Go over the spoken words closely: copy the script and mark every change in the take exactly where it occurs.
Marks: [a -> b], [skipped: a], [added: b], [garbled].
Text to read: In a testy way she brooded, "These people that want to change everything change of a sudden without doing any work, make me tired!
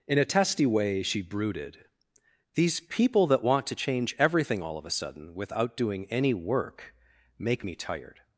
In a testy way she brooded, "These people that want to change everything [change -> all] of a sudden without doing any work, make me tired!